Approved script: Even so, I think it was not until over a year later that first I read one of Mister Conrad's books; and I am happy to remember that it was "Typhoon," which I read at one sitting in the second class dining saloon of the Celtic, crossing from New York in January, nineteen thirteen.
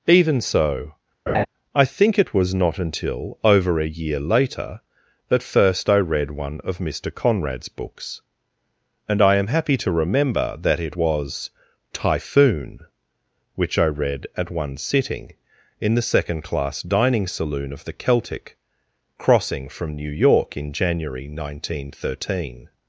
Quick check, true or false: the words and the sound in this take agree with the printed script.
false